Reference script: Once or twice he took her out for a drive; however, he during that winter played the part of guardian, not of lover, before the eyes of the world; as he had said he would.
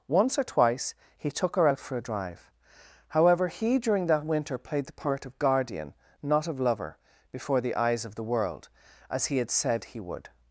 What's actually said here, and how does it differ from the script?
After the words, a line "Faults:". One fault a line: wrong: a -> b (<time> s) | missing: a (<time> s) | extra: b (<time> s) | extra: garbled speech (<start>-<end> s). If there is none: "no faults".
Once or twice he took her out for a drive; however, he during that winter played the part of guardian, not of lover, before the eyes of the world; as he had said he would.
Faults:
no faults